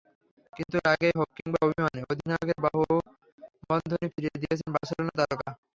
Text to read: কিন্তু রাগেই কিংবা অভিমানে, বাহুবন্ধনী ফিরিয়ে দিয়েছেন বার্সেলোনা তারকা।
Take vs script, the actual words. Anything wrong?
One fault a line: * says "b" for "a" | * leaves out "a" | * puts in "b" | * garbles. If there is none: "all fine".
* puts in "হোক"
* puts in "অধিনায়কের"